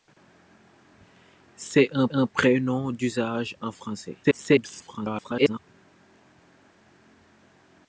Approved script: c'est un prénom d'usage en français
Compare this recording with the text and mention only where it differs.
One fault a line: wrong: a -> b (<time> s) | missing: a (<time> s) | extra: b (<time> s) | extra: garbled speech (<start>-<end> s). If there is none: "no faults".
extra: un (2.1 s)
extra: garbled speech (4.2-5.6 s)